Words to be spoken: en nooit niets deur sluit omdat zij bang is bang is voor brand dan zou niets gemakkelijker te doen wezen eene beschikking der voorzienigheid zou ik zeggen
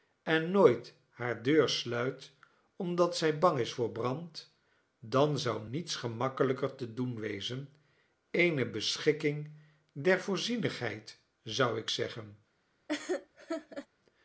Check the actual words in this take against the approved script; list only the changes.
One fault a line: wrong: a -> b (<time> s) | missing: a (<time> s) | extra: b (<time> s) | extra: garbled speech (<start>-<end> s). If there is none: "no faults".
wrong: niets -> hare (1.1 s)
missing: bang is (3.7 s)